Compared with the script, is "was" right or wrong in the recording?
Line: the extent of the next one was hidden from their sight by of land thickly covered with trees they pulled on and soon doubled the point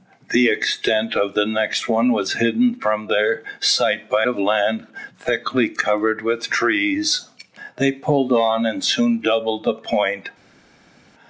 right